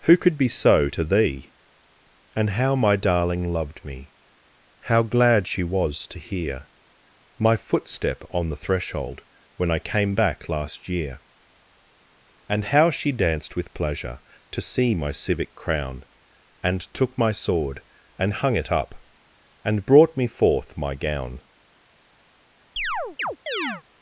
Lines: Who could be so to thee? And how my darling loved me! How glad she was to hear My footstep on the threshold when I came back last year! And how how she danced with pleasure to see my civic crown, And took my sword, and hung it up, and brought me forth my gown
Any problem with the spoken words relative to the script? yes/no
yes